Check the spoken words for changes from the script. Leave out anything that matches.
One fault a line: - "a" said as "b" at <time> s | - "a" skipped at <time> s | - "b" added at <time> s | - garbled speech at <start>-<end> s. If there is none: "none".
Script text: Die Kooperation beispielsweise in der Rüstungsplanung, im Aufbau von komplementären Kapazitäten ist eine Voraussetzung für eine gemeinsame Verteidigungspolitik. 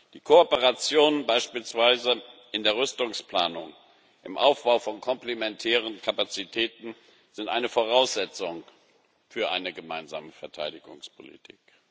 none